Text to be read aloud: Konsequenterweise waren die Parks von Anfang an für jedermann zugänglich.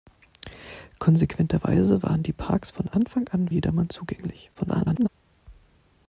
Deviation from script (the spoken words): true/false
true